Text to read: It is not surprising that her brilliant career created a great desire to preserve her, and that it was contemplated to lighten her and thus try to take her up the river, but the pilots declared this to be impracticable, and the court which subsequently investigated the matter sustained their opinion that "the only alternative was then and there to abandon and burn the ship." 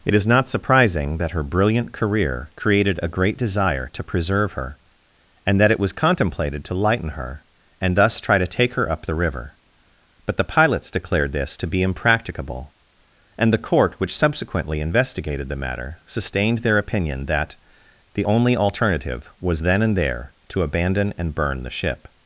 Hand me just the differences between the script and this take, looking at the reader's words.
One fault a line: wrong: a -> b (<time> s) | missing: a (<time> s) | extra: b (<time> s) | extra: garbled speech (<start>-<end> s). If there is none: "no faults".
no faults